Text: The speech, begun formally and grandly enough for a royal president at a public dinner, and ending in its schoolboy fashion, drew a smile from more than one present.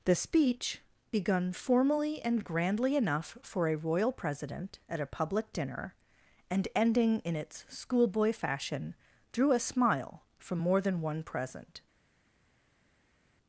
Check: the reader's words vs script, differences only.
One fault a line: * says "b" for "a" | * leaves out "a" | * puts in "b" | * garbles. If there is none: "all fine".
all fine